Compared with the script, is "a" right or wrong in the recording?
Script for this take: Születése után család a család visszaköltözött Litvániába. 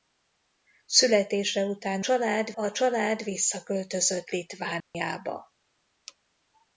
right